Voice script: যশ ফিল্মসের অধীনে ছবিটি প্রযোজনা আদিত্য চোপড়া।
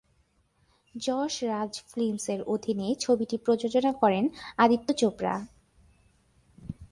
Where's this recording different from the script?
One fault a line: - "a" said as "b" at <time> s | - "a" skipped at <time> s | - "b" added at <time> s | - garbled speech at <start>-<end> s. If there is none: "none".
- "রাজ" added at 1.4 s
- "করেন" added at 3.9 s